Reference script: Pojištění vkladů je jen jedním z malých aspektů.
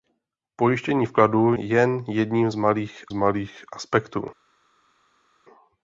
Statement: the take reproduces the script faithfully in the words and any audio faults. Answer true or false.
false